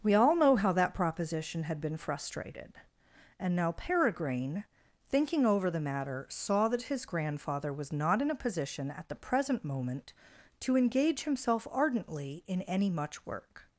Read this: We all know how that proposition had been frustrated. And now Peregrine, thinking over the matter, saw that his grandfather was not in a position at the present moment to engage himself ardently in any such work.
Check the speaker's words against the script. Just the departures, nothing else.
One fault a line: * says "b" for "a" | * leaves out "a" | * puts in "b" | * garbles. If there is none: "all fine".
* says "much" for "such"